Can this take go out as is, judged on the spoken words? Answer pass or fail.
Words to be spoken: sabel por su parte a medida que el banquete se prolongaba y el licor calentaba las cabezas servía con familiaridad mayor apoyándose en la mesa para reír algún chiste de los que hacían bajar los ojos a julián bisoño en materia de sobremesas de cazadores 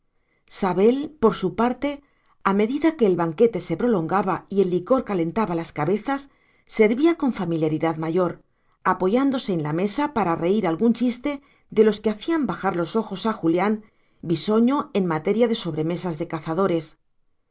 pass